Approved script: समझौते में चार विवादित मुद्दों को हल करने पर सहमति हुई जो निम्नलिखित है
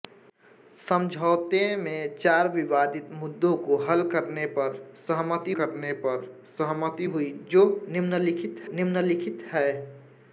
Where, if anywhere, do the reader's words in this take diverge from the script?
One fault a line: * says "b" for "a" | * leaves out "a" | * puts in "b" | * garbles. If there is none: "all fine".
* puts in "करने पर सहमति"
* puts in "निम्नलिखित"